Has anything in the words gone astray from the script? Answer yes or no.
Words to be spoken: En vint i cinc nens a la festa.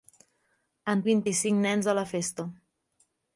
no